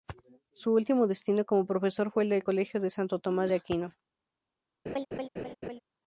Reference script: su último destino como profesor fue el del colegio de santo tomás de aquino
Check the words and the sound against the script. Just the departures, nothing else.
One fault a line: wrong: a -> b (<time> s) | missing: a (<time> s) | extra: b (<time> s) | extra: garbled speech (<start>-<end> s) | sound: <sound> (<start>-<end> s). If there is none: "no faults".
sound: laugh (4.9-5.8 s)